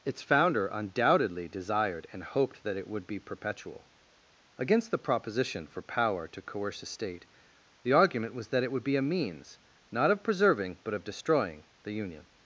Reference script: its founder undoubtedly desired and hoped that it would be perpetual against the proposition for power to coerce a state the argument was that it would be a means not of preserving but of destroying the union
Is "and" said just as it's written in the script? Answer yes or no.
yes